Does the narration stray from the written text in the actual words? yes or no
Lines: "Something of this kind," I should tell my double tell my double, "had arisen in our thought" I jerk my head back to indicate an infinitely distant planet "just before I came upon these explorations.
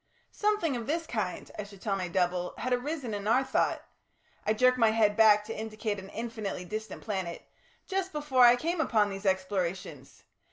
yes